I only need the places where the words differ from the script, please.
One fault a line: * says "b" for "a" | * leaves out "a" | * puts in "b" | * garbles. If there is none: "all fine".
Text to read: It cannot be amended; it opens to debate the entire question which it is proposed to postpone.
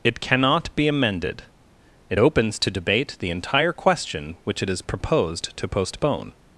all fine